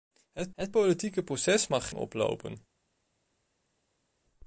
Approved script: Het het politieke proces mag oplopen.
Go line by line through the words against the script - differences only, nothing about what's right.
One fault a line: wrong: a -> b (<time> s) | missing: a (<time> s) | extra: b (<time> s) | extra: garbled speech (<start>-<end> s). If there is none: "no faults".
no faults